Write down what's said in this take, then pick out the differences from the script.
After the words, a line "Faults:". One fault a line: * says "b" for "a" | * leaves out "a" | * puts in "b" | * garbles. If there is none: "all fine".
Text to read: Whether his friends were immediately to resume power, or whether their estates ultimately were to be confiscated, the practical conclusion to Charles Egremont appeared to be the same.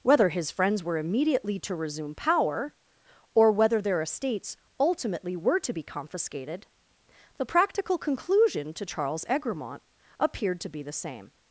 Whether his friends were immediately to resume power, or whether their estates ultimately were to be confiscated, the practical conclusion to Charles Egremont appeared to be the same.
Faults:
all fine